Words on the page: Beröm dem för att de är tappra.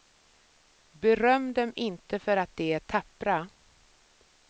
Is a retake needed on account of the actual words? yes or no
yes